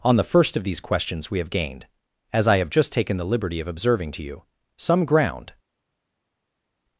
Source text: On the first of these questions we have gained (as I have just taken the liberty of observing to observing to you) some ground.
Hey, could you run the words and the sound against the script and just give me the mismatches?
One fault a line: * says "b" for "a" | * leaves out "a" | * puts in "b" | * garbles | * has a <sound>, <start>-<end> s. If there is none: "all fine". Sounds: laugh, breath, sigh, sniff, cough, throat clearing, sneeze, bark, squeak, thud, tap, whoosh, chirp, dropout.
* leaves out "observing to"